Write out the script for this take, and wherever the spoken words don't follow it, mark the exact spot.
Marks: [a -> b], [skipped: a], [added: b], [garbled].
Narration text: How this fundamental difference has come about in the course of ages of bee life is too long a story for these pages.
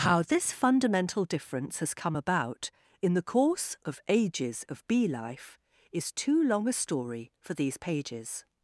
How this fundamental difference has come about in the course of ages of bee life is too long a story for these pages.